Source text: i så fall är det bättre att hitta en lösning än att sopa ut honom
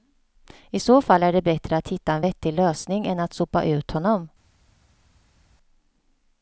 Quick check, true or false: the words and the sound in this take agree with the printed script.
false